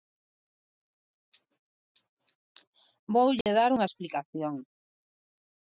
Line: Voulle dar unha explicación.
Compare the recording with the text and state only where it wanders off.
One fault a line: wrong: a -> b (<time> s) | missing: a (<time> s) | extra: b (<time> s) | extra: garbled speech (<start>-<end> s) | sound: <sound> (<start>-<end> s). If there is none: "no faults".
sound: dropout (3.4-3.5 s)